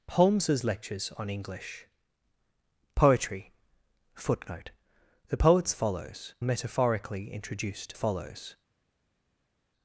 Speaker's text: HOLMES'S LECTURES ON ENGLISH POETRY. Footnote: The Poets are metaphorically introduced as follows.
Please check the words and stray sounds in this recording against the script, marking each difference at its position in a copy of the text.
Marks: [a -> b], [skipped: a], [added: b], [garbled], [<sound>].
HOLMES'S LECTURES ON ENGLISH POETRY. Footnote: The Poets [are -> follows] metaphorically introduced [skipped: as] follows.